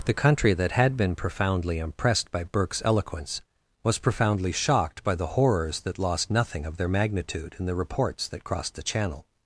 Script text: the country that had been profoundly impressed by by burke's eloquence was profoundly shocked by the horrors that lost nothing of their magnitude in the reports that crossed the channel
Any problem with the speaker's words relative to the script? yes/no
yes